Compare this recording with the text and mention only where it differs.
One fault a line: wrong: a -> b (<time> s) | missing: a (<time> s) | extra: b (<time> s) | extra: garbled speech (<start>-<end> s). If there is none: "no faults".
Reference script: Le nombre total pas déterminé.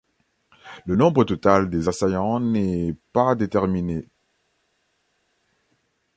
extra: des assaillants n'est (1.7 s)